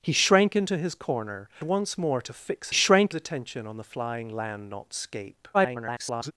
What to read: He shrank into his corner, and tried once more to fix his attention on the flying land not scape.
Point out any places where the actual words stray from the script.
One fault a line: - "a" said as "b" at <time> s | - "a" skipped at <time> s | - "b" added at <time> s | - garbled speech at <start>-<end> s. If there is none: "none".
- "and tried" skipped at 1.5 s
- "his" said as "shrank" at 2.7 s
- garbled speech at 5.5-6.3 s